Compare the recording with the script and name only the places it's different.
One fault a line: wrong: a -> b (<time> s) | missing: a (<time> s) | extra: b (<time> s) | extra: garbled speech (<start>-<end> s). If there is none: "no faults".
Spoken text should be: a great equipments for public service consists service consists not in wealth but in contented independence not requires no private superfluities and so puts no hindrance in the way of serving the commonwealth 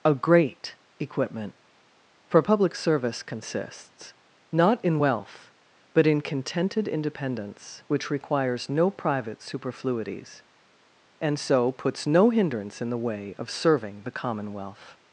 wrong: equipments -> equipment (1.0 s)
missing: service consists (4.1 s)
wrong: not -> which (7.9 s)